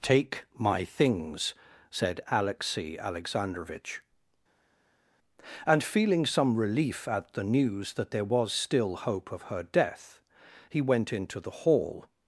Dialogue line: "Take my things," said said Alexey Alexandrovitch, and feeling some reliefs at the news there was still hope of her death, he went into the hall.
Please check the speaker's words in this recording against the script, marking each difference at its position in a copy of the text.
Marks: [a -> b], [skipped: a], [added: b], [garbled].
"Take my things," said [skipped: said] Alexey Alexandrovitch, and feeling some [reliefs -> relief] at the news [added: that] there was still hope of her death, he went into the hall.